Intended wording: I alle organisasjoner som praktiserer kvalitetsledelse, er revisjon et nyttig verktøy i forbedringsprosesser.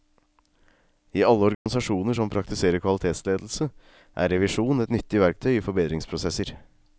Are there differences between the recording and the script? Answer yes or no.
no